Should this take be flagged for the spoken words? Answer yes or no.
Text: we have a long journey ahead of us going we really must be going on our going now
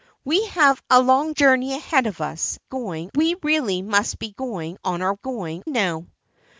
no